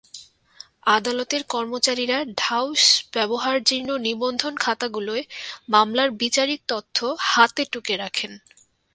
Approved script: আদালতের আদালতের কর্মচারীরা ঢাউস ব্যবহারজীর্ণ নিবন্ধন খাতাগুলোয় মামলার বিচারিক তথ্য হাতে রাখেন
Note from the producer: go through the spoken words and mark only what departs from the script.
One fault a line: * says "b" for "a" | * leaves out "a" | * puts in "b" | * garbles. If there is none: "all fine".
* leaves out "আদালতের"
* puts in "টুকে"